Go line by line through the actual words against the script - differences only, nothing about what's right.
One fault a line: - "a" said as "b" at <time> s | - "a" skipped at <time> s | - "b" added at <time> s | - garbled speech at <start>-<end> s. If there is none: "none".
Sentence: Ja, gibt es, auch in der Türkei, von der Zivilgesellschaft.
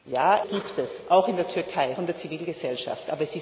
none